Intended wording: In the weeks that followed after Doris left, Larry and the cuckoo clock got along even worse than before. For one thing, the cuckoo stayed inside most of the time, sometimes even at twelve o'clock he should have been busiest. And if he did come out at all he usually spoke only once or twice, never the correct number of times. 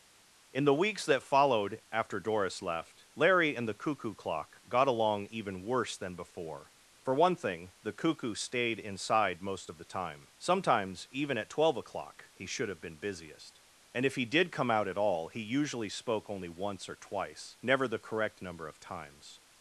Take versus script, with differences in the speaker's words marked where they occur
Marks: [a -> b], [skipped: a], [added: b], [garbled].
In the weeks that followed after Doris left, Larry and the cuckoo clock got along even worse than before. For one thing, the cuckoo stayed inside most of the time, sometimes even at twelve o'clock he should have been busiest. And if he did come out at all he usually spoke only once or twice, never the correct number of times.